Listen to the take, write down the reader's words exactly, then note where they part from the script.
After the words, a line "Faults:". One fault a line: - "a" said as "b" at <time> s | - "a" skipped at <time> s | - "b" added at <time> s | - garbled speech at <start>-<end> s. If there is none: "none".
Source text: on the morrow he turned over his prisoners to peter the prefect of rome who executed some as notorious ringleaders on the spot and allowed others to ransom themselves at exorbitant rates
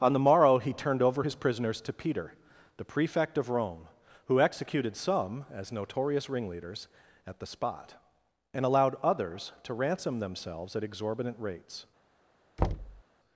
on the morrow he turned over his prisoners to peter the prefect of rome who executed some as notorious ringleaders at the spot and allowed others to ransom themselves at exorbitant rates
Faults:
- "on" said as "at" at 7.3 s